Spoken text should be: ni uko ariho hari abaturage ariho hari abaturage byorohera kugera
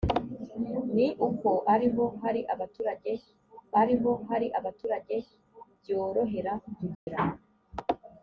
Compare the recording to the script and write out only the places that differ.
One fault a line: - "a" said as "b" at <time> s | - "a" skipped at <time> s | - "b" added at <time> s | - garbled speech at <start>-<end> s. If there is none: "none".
none